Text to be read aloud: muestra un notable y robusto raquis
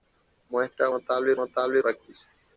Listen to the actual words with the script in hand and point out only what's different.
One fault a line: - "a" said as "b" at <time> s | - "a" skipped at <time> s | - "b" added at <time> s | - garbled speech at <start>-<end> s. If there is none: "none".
- "un" skipped at 0.9 s
- "robusto" said as "notable" at 1.4 s